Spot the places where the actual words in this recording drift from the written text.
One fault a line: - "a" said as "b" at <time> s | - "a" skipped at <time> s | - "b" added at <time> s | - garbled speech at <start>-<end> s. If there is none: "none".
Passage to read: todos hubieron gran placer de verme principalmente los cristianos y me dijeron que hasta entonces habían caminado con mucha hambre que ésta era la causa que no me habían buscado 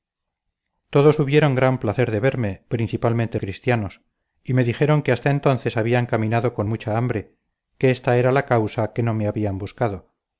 - "los" skipped at 3.4 s